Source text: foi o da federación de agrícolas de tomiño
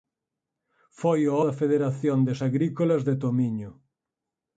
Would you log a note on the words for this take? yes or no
no